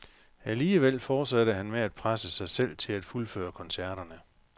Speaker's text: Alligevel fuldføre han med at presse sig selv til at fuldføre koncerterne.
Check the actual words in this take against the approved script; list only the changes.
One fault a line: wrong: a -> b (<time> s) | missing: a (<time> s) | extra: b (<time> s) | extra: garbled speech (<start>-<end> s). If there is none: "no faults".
wrong: fuldføre -> fortsatte (1.0 s)